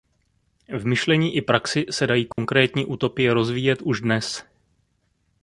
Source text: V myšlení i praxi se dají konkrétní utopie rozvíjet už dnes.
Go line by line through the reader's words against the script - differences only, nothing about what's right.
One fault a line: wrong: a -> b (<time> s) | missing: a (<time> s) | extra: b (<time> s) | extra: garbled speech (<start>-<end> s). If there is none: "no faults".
no faults